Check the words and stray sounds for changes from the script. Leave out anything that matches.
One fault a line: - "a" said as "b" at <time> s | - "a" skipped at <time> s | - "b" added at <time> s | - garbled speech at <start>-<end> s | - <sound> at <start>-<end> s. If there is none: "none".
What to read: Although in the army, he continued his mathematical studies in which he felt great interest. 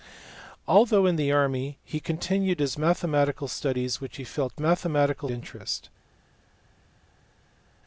- "great" said as "mathematical" at 4.6 s